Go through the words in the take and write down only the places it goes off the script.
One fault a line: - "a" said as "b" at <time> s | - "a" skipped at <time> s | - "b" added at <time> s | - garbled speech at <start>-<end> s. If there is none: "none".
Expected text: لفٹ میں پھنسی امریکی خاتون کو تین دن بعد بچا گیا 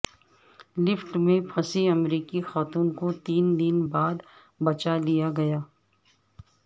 - "لیا" added at 5.0 s